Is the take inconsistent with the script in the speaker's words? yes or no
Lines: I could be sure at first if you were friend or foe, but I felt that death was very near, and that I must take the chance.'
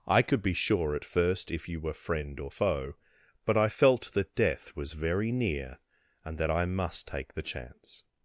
no